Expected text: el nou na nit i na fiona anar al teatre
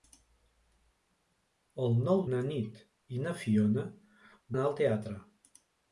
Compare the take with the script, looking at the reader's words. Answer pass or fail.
pass